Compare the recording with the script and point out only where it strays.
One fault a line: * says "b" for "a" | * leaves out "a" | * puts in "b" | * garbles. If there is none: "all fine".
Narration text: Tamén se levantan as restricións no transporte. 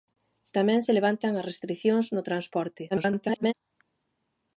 * garbles